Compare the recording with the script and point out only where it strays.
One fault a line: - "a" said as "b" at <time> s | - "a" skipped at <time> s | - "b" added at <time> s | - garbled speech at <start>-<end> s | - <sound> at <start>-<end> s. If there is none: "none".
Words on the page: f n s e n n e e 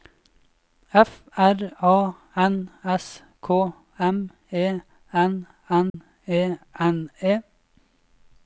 - "r a" added at 1.4 s
- "k m" added at 3.4 s
- dropout at 5.9-5.9 s
- "n" added at 6.8 s